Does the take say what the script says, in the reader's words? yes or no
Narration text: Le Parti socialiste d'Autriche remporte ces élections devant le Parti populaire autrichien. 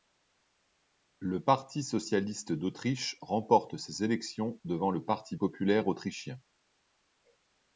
yes